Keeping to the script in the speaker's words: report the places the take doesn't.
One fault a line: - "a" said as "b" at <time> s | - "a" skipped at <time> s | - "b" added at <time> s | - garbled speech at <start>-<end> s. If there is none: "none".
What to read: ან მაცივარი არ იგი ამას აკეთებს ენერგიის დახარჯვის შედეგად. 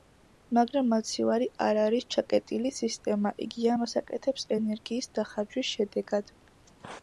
- "ან" said as "მაგრამ" at 0.6 s
- "არის ჩაკეტილი სისტემა" added at 1.8 s